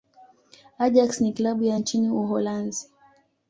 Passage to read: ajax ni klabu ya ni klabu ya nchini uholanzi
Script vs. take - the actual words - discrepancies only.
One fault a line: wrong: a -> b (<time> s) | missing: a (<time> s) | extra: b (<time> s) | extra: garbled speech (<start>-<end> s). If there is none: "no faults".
missing: ni klabu ya (1.8 s)